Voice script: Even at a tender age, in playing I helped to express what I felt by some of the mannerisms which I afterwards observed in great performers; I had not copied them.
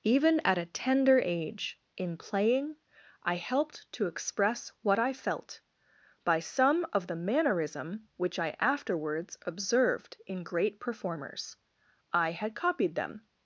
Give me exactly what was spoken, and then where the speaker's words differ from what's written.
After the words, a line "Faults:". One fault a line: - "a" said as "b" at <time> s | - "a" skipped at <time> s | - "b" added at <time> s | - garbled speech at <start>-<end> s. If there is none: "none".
Even at a tender age, in playing I helped to express what I felt by some of the mannerism which I afterwards observed in great performers; I had copied them.
Faults:
- "mannerisms" said as "mannerism" at 7.2 s
- "not" skipped at 12.6 s